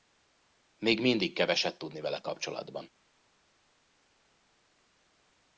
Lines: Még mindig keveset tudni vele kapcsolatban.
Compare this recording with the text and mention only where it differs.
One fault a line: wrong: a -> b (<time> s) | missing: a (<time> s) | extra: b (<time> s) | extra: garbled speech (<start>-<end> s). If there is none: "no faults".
no faults